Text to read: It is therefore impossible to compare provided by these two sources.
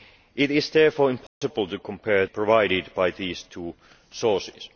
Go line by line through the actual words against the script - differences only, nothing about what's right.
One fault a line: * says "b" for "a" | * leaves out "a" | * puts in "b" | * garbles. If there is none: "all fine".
all fine